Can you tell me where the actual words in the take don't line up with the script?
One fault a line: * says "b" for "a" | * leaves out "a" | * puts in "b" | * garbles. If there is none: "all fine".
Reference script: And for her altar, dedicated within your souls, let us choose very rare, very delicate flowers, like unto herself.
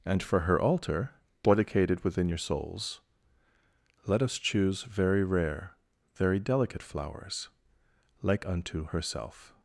all fine